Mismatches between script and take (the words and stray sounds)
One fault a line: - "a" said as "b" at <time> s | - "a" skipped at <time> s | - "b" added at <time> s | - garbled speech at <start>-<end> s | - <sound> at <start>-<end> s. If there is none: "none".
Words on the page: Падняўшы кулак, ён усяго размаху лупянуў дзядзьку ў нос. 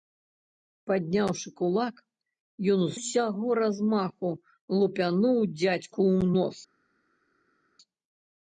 none